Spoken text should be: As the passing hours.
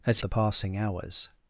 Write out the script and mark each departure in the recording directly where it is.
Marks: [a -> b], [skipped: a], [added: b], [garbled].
As the passing hours.